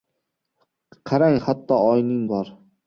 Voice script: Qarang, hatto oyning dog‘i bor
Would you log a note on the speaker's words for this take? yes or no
yes